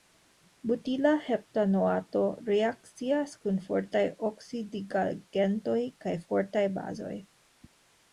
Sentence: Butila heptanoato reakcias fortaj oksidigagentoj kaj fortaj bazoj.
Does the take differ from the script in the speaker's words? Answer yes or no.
yes